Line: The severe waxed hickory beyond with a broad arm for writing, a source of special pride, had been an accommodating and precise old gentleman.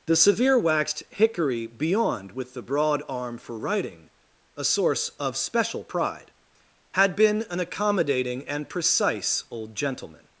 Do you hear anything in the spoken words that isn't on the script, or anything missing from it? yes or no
yes